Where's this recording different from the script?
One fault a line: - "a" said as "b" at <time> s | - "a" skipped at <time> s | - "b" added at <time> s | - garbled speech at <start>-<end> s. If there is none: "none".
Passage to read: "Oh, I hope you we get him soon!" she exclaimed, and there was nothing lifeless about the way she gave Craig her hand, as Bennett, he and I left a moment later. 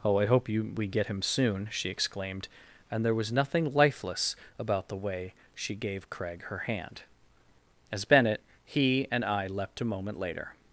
- "left" said as "leapt" at 9.5 s